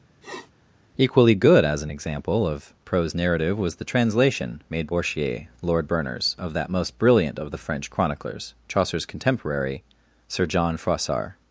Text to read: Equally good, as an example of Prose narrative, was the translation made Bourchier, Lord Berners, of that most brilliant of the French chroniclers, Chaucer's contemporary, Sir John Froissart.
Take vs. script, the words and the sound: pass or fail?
fail